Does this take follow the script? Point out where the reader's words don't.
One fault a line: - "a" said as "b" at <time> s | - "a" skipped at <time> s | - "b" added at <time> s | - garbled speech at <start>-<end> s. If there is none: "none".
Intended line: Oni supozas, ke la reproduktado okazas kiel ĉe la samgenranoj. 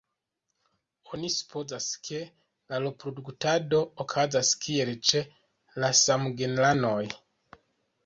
none